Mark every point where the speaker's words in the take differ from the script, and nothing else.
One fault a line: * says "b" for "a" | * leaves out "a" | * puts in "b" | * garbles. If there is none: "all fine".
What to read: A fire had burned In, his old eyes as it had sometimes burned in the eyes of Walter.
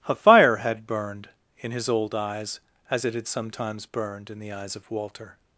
all fine